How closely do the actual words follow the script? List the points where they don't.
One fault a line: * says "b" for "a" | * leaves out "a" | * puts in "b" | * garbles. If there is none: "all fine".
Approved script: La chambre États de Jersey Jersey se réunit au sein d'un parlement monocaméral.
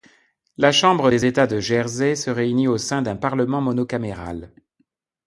* puts in "des"
* leaves out "Jersey"